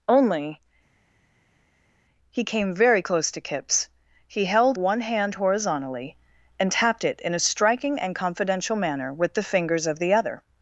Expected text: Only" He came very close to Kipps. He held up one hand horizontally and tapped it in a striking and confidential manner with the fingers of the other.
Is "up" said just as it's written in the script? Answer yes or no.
no